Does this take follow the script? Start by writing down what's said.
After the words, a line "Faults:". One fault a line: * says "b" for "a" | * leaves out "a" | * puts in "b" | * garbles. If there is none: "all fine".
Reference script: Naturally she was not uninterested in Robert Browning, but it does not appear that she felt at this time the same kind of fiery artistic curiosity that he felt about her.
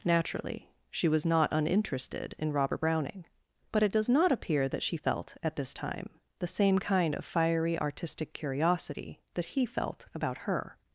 Naturally she was not uninterested in Robert Browning, but it does not appear that she felt at this time the same kind of fiery artistic curiosity that he felt about her.
Faults:
all fine